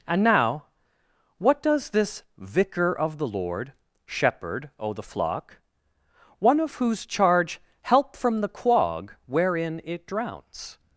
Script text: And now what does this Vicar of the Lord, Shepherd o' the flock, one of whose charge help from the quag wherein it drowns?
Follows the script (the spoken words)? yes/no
yes